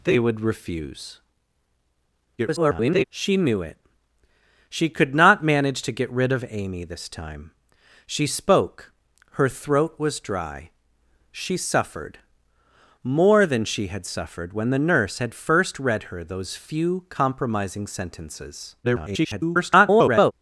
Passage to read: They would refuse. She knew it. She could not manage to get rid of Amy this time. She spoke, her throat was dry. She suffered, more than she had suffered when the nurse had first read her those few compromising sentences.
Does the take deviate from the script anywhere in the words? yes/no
yes